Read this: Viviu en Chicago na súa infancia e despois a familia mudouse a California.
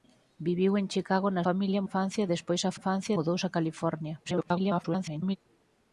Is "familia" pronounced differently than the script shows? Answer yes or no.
yes